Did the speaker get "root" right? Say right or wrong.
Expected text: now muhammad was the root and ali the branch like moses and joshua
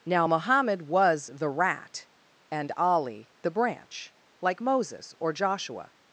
wrong